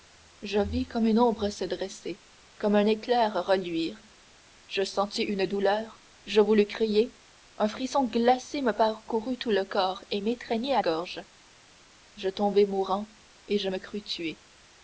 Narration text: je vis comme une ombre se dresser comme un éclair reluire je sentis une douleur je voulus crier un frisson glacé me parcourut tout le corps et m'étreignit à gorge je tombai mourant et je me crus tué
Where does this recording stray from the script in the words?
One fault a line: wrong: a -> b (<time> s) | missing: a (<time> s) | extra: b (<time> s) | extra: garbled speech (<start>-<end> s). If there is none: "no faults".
no faults